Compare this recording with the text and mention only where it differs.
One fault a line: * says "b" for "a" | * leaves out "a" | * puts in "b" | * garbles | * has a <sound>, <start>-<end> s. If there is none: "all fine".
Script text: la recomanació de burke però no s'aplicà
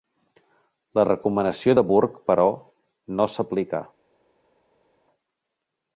all fine